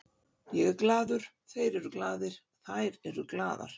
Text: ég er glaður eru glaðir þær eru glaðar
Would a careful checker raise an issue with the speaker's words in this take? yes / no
yes